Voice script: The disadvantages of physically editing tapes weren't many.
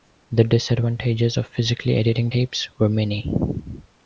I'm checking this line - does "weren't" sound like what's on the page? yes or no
no